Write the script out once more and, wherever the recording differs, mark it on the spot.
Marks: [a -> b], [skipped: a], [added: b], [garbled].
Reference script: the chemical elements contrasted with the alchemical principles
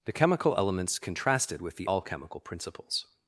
the chemical elements contrasted with the alchemical principles